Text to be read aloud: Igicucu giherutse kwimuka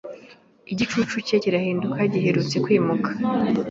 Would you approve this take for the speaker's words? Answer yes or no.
no